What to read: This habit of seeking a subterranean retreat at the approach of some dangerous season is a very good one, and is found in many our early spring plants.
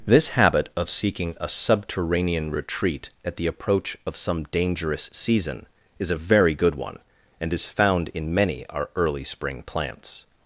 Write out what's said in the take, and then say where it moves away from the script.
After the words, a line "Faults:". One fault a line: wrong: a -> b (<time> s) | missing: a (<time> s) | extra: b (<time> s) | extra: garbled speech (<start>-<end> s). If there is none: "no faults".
This habit of seeking a subterranean retreat at the approach of some dangerous season is a very good one, and is found in many our early spring plants.
Faults:
no faults